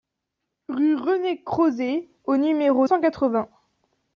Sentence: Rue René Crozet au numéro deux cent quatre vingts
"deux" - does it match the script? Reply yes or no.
no